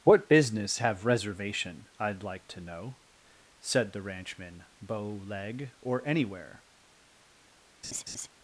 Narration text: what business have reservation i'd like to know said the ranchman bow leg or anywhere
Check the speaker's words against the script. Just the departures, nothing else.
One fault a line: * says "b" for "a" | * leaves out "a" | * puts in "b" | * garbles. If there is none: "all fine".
all fine